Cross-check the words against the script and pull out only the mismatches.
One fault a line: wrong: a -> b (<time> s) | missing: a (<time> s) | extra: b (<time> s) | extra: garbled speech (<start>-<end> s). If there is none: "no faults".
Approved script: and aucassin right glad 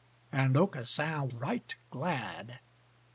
no faults